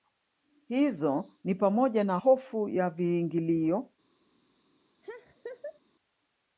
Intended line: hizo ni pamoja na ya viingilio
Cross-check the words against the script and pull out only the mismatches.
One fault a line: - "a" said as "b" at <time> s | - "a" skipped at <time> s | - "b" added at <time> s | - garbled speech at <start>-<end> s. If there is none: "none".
- "hofu" added at 2.1 s